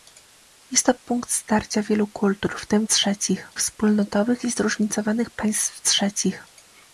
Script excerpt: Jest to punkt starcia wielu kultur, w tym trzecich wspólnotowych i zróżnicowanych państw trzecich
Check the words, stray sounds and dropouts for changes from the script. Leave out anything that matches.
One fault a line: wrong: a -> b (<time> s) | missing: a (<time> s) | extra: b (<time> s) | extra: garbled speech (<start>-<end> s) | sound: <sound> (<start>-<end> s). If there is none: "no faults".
no faults